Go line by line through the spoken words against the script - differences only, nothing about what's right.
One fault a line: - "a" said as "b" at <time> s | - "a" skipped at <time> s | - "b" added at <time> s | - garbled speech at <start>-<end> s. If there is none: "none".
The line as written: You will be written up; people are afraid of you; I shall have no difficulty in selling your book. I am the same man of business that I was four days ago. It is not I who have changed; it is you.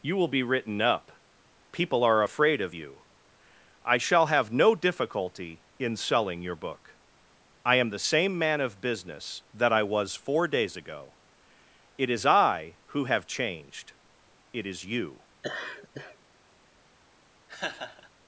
- "not" skipped at 12.2 s